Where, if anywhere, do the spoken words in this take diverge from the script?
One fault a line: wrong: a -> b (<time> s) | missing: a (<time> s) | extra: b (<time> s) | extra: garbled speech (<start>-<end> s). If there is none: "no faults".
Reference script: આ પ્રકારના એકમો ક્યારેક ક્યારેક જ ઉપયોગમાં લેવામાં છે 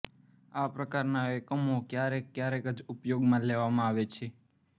extra: આવે (3.9 s)